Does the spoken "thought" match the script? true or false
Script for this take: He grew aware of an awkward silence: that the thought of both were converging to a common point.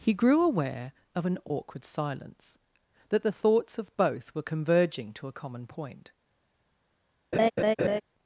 false